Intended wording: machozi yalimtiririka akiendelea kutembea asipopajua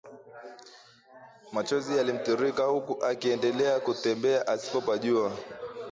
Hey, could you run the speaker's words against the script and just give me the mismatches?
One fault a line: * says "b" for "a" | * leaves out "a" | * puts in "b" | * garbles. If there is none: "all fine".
* puts in "huku"